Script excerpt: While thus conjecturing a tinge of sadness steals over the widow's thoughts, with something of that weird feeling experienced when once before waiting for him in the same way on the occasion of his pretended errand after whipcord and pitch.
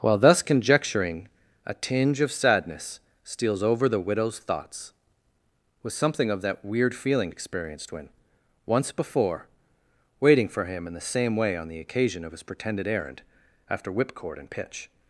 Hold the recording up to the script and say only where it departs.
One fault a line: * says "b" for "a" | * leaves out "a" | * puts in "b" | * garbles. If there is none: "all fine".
all fine